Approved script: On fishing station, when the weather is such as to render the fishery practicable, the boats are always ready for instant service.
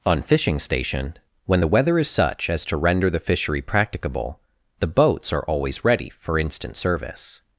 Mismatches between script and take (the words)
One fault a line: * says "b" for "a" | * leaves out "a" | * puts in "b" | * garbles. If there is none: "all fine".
all fine